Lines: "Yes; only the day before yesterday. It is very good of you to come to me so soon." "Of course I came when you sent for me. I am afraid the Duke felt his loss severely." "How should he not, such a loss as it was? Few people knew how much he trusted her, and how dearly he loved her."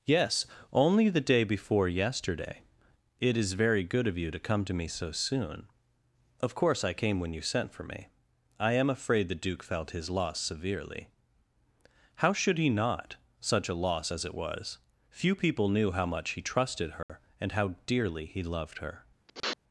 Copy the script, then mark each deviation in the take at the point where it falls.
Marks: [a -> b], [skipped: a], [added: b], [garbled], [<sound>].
"Yes; only the day before yesterday. It is very good of you to come to me so soon." "Of course I came when you sent for me. I am afraid the Duke felt his loss severely." "How should he not, such a loss as it was? Few people knew how much he trusted her, [dropout] and how dearly he loved her." [sniff]